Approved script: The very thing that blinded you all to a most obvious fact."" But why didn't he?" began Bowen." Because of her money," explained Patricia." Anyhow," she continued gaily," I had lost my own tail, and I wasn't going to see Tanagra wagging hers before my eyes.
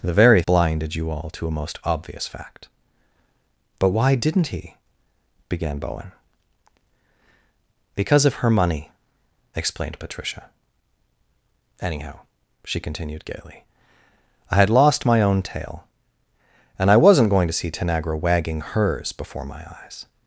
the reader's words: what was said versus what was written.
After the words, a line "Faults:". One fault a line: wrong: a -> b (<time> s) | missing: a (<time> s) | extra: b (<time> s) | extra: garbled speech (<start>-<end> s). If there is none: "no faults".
The very blinded you all to a most obvious fact."" But why didn't he?" began Bowen." Because of her money," explained Patricia." Anyhow," she continued gaily," I had lost my own tail, and I wasn't going to see Tanagra wagging hers before my eyes.
Faults:
missing: thing that (0.4 s)